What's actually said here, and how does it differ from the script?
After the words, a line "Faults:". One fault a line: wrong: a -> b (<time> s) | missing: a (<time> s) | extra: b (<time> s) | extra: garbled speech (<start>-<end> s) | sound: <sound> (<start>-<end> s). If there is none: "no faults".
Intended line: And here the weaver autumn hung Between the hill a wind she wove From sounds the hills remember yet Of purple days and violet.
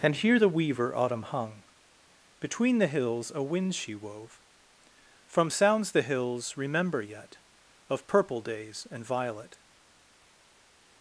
And here the weaver autumn hung Between the hills a wind she wove From sounds the hills remember yet Of purple days and violet.
Faults:
wrong: hill -> hills (2.9 s)